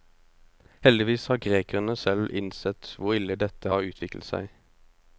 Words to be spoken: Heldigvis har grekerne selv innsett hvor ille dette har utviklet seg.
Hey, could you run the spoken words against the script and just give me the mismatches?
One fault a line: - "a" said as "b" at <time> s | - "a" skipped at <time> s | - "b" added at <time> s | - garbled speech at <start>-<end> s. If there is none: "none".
none